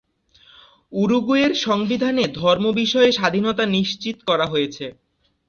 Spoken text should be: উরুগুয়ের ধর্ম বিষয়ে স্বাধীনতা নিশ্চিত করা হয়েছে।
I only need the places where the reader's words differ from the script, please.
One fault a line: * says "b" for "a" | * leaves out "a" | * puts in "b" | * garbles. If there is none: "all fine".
* puts in "সংবিধানে"